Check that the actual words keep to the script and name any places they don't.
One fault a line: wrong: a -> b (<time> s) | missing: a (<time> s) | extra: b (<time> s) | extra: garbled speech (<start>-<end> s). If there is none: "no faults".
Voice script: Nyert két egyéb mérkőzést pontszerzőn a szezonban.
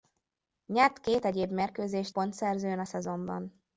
no faults